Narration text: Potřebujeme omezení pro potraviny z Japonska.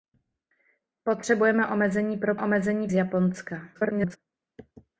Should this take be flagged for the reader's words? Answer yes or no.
yes